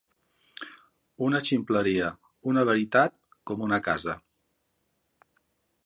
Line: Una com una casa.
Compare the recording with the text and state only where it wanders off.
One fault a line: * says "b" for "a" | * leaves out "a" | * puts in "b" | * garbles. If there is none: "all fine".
* puts in "ximpleria una veritat"